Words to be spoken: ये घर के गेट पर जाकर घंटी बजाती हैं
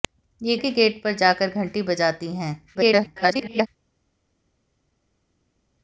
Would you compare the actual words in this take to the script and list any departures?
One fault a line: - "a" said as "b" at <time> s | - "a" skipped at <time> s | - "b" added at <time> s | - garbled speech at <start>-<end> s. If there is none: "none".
- "घर" skipped at 0.6 s
- garbled speech at 2.7-3.7 s